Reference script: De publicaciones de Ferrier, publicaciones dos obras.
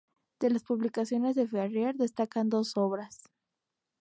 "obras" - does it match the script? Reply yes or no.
yes